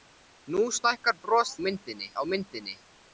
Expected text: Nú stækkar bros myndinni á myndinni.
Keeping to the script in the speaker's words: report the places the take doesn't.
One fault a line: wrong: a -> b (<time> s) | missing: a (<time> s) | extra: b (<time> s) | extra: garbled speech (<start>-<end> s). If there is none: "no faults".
no faults